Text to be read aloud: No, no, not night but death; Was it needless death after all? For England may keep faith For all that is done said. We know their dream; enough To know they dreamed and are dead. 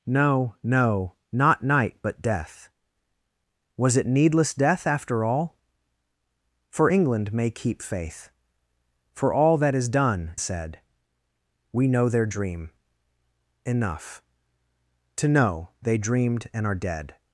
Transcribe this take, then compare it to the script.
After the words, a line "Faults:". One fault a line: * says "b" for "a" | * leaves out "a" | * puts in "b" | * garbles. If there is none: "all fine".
No, no, not night but death; Was it needless death after all? For England may keep faith For all that is done said. We know their dream; enough To know they dreamed and are dead.
Faults:
all fine